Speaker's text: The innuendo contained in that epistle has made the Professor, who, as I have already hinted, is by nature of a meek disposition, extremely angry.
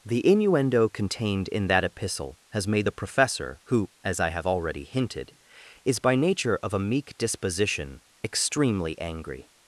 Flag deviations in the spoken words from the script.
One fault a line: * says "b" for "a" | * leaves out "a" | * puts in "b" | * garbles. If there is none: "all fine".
all fine